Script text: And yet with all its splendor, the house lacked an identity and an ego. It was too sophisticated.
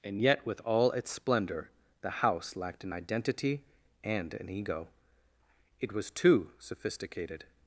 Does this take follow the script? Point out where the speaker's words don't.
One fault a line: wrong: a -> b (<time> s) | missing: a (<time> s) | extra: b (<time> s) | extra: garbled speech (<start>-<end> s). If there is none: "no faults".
no faults